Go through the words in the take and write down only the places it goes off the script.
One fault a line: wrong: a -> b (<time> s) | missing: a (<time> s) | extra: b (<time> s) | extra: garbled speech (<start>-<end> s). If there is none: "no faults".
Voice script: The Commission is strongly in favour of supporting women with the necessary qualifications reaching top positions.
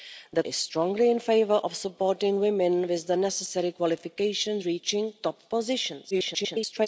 missing: Commission (0.4 s)
extra: garbled speech (6.1-6.9 s)